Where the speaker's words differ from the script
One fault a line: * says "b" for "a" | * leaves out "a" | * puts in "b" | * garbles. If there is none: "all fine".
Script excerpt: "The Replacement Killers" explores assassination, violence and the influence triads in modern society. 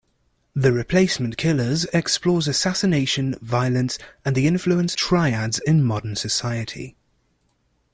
all fine